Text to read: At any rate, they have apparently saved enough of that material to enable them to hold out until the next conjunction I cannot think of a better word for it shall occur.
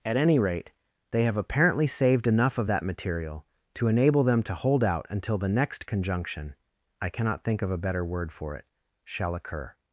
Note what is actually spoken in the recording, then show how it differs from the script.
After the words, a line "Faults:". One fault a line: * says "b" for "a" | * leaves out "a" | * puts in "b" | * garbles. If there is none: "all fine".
At any rate, they have apparently saved enough of that material to enable them to hold out until the next conjunction I cannot think of a better word for it shall occur.
Faults:
all fine